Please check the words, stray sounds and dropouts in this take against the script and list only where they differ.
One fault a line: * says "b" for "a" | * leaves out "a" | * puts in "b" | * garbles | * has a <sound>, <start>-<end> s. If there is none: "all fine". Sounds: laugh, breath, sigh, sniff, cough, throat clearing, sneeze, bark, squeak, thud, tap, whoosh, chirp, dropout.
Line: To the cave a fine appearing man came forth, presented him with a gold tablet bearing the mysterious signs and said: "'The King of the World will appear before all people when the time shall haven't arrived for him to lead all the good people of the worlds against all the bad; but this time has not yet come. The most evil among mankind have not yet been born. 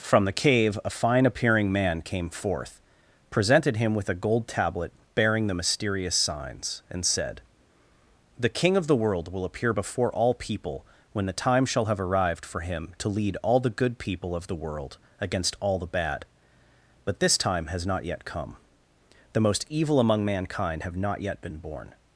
* says "From" for "To"
* says "have" for "haven't"
* says "world" for "worlds"